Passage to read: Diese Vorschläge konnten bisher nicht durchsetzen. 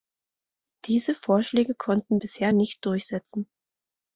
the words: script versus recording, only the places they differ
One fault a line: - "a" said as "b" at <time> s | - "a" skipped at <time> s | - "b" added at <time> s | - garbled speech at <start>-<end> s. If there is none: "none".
none